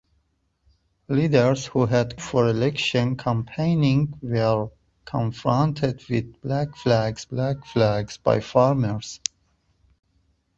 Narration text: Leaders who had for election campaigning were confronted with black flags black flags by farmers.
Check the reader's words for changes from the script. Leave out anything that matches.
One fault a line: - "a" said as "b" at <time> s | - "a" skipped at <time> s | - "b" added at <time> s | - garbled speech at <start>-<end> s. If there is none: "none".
none